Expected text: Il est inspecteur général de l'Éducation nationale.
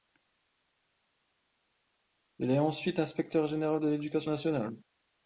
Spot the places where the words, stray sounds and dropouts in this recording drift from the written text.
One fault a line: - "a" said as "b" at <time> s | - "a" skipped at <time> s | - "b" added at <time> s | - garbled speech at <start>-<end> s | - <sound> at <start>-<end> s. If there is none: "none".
- "ensuite" added at 2.6 s